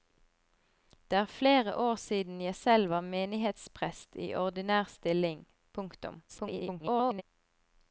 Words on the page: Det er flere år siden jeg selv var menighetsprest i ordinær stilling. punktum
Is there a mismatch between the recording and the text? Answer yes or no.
yes